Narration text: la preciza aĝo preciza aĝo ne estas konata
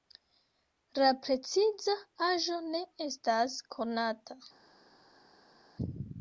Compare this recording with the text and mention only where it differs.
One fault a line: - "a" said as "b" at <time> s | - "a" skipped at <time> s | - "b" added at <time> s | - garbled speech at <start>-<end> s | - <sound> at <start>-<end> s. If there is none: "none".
- "preciza aĝo" skipped at 2.6 s